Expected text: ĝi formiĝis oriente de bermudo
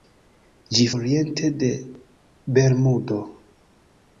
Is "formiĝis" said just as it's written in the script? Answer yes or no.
no